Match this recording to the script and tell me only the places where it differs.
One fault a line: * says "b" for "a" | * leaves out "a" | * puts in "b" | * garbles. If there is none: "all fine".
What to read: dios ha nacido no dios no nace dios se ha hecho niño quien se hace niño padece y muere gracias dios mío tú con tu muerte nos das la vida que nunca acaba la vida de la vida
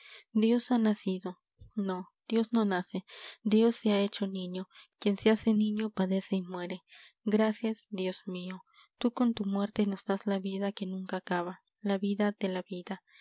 all fine